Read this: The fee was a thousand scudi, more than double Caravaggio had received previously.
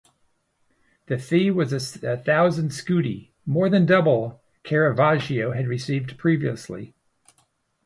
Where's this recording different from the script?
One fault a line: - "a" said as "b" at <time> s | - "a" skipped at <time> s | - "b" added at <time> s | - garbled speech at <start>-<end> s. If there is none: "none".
none